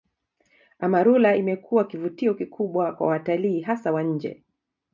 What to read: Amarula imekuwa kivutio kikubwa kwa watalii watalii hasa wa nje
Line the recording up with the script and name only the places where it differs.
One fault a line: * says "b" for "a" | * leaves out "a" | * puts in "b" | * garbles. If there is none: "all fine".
* leaves out "watalii"